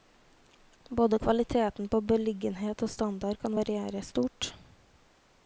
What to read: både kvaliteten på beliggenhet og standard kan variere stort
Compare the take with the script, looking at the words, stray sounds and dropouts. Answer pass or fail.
pass